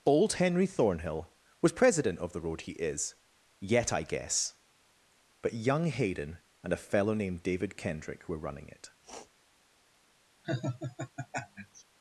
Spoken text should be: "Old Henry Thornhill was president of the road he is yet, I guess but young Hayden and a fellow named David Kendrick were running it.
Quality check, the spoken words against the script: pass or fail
pass